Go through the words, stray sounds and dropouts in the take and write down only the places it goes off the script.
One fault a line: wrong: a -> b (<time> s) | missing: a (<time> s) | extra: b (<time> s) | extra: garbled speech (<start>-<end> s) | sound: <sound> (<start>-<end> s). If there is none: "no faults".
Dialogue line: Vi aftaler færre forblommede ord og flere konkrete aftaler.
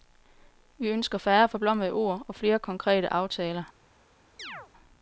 wrong: aftaler -> ønsker (0.9 s)
sound: chirp (4.4-4.7 s)